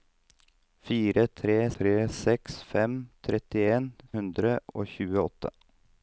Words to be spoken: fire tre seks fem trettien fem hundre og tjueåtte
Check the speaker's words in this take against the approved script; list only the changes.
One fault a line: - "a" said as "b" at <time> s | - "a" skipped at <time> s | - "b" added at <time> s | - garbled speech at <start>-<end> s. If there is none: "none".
- "tre" added at 1.8 s
- "fem" skipped at 3.9 s